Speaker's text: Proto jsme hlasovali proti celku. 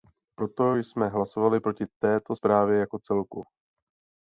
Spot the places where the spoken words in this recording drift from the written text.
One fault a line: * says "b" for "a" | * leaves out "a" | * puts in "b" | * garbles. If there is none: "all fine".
* puts in "této zprávě jako"